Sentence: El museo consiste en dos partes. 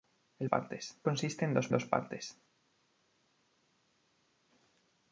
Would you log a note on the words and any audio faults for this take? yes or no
yes